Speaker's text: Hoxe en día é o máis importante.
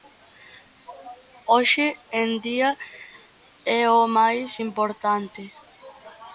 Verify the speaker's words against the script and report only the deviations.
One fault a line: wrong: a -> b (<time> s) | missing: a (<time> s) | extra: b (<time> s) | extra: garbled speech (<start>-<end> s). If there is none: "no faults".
no faults